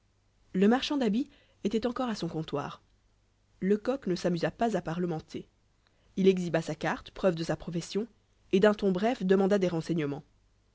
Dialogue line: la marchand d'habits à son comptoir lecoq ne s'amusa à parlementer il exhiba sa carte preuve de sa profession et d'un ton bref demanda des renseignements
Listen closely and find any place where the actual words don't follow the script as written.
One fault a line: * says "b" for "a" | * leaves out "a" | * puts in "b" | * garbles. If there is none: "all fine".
* says "le" for "la"
* puts in "était encore"
* puts in "pas"